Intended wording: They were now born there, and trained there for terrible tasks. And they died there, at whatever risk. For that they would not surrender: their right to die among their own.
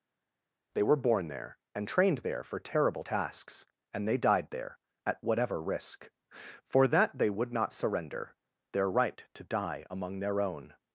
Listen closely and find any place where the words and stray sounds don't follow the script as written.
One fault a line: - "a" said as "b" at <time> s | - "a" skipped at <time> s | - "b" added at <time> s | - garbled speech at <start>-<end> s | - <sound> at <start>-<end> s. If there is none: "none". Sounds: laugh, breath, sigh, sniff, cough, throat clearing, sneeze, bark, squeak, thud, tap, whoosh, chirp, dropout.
- "now" skipped at 1.1 s